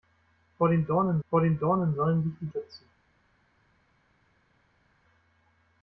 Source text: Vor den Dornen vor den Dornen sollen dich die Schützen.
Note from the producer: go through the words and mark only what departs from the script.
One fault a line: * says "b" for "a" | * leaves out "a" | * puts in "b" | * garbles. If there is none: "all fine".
all fine